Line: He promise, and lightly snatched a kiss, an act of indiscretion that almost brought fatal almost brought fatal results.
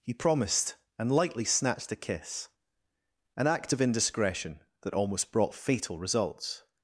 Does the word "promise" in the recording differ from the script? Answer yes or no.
yes